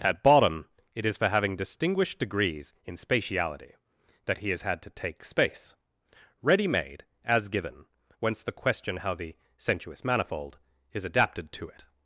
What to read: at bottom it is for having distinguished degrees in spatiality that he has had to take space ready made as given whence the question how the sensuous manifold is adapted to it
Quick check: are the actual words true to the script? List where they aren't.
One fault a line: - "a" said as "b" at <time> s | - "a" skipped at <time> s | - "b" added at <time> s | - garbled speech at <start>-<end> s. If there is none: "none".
none